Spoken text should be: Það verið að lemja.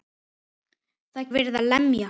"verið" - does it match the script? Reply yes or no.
yes